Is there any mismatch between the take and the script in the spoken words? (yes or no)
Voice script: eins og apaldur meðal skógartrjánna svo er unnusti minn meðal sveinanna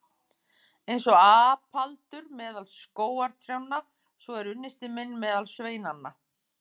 no